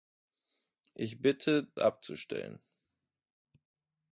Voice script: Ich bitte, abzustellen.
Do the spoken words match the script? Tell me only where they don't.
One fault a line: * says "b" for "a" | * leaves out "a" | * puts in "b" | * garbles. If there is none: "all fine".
all fine